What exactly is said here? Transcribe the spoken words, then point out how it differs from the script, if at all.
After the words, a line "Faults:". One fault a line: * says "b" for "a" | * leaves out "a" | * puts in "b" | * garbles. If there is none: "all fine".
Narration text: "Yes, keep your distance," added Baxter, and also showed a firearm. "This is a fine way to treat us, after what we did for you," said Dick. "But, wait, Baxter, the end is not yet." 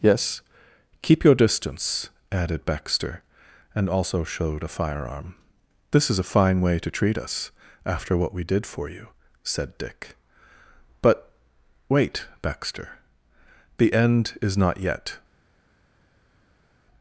"Yes, keep your distance," added Baxter, and also showed a firearm. "This is a fine way to treat us, after what we did for you," said Dick. "But, wait, Baxter, the end is not yet."
Faults:
all fine